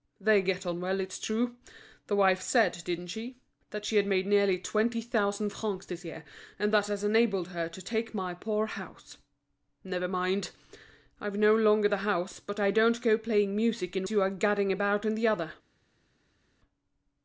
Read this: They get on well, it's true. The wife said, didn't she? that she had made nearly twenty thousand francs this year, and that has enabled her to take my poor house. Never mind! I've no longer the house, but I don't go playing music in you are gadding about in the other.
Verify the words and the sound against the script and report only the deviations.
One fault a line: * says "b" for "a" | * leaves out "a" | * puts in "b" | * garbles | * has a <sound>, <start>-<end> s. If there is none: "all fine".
all fine